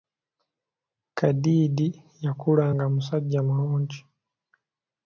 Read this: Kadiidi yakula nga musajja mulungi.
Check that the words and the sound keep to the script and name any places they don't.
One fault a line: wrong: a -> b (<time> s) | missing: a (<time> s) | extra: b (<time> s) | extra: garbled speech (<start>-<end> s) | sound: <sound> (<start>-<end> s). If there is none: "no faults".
no faults